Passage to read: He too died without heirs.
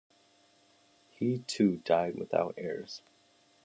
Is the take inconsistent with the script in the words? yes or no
no